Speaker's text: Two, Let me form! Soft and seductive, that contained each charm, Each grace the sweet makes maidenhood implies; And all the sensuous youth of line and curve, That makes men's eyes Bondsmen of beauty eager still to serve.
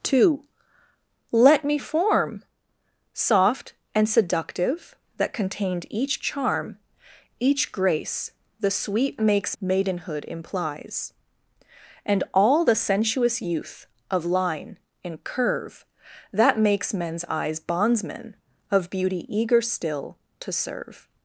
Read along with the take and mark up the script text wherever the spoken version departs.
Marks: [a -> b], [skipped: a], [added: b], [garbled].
Two, Let me form! Soft and seductive, that contained each charm, Each grace the sweet makes maidenhood implies; And all the sensuous youth of line and curve, That makes men's eyes Bondsmen of beauty eager still to serve.